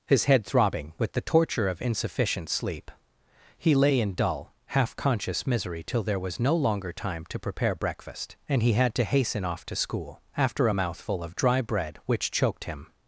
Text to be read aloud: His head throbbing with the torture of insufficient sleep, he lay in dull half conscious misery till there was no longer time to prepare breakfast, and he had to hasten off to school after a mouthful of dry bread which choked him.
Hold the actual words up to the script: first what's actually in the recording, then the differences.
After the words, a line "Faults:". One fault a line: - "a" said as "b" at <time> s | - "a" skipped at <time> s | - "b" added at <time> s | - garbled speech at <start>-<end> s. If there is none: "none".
His head throbbing with the torture of insufficient sleep, he lay in dull half conscious misery till there was no longer time to prepare breakfast, and he had to hasten off to school after a mouthful of dry bread which choked him.
Faults:
none